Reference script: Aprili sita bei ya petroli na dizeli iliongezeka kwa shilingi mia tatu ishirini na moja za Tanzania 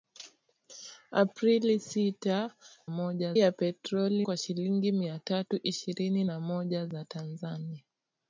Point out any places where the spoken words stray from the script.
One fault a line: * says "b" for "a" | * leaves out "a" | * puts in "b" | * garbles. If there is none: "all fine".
* says "moja" for "bei"
* leaves out "na dizeli iliongezeka"